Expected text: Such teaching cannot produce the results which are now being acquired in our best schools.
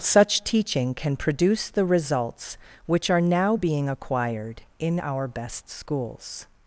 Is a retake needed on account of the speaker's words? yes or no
yes